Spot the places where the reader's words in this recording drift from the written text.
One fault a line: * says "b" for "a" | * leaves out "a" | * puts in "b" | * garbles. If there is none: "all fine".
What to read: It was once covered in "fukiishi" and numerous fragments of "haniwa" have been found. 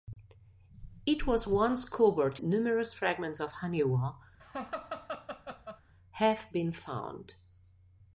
* leaves out "in fukiishi and"